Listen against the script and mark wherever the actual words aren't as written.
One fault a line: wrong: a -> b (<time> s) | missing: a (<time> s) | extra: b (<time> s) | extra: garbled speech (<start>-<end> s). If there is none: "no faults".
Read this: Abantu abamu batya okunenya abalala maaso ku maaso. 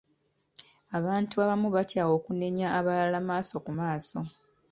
no faults